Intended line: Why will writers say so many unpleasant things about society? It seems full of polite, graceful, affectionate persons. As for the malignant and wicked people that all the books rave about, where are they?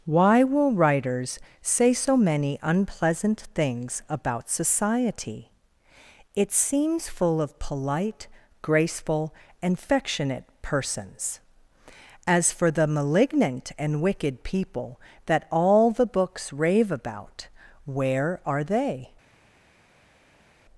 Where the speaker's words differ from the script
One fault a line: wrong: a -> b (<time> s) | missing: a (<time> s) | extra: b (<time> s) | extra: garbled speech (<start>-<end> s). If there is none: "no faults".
extra: and (9.6 s)